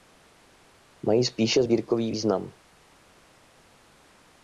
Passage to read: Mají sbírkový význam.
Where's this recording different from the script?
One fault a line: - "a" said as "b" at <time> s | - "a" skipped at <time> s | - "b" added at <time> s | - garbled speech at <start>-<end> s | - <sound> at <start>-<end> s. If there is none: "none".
- "spíše" added at 1.2 s